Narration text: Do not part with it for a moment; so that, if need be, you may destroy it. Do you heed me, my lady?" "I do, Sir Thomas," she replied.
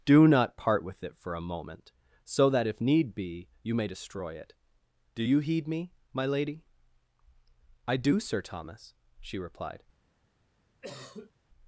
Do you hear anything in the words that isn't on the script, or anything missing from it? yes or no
no